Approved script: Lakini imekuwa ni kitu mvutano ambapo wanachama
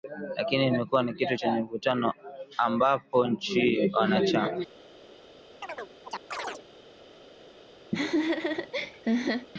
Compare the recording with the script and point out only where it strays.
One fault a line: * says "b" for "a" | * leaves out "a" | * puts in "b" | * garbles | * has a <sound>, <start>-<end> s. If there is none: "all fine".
* puts in "chenye"
* puts in "nchi"
* has a chirp, 5.6-6.6 s
* has a laugh, 7.9-9.5 s